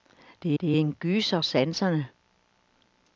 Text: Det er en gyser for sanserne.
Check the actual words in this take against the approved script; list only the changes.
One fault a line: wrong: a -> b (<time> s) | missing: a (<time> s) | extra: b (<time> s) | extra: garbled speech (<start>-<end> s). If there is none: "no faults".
extra: det (0.6 s)
missing: for (1.4 s)